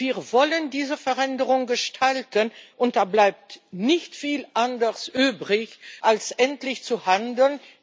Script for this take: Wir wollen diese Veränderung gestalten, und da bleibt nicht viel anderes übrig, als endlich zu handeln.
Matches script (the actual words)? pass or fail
pass